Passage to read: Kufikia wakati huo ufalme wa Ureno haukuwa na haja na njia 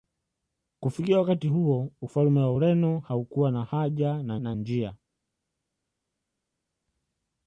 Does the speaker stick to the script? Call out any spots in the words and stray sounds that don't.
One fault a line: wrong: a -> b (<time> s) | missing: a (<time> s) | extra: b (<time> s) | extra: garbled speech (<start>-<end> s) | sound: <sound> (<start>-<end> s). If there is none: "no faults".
extra: na (4.4 s)